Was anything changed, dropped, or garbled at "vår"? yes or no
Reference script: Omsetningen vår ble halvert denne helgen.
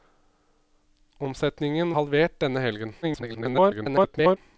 yes